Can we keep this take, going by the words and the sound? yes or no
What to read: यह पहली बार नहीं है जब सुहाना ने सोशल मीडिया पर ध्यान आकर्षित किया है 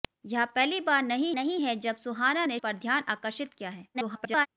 no